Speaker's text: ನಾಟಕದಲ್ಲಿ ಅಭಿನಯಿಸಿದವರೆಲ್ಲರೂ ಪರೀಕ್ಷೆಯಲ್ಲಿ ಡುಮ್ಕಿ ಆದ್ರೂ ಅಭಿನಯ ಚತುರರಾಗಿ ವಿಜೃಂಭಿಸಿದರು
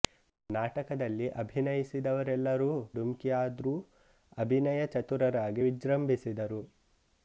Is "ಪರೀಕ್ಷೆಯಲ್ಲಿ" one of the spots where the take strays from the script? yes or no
yes